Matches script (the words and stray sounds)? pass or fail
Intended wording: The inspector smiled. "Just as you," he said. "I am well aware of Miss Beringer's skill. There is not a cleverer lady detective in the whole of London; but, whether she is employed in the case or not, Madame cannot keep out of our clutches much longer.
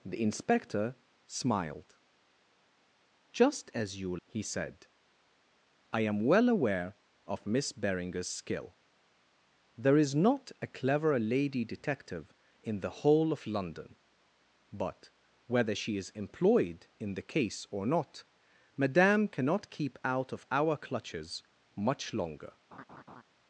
fail